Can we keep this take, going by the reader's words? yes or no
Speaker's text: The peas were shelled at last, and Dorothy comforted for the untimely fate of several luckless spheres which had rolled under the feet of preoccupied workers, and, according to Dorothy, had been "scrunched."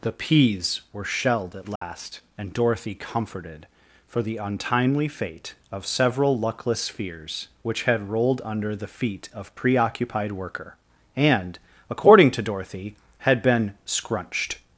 no